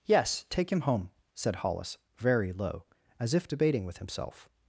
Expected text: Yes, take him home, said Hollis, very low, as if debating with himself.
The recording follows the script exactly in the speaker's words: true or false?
true